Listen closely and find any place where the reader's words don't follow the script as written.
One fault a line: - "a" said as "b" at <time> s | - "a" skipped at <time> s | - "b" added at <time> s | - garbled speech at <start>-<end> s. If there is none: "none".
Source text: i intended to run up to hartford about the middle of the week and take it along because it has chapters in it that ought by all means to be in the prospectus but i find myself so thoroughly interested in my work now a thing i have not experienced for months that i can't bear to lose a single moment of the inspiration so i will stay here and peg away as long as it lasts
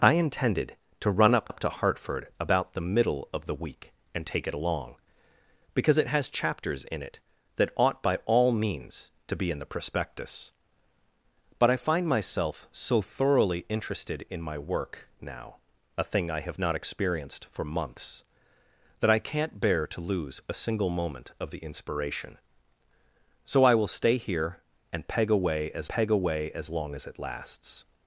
- "up" added at 1.5 s
- "peg away as" added at 25.9 s